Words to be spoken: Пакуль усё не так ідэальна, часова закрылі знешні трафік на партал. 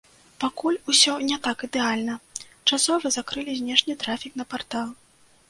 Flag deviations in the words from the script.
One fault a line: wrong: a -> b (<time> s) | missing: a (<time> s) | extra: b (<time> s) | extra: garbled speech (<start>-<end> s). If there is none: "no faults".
no faults